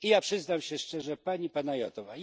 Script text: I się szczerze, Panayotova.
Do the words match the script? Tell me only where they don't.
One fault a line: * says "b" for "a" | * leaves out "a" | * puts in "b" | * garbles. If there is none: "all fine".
* puts in "ja przyznam"
* puts in "Pani"